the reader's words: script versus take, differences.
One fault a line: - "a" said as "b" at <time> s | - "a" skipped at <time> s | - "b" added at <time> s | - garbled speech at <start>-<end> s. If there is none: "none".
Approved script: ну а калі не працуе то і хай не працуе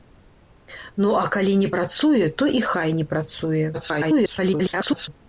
- garbled speech at 3.7-5.1 s